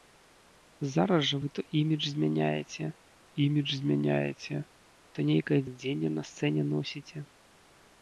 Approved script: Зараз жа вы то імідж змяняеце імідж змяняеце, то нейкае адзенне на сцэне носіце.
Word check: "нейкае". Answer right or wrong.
right